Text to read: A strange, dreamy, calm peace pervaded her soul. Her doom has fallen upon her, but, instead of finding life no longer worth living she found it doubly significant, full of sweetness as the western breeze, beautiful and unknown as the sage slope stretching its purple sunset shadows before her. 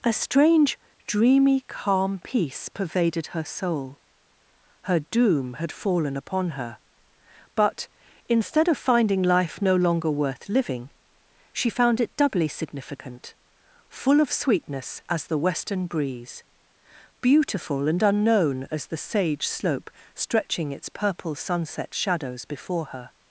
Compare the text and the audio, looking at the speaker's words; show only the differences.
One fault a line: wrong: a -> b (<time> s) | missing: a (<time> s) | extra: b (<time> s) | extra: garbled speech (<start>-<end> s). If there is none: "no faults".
wrong: has -> had (5.6 s)